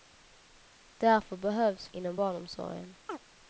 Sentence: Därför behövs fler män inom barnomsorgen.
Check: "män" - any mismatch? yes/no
yes